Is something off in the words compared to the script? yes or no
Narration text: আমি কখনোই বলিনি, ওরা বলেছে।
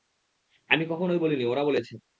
no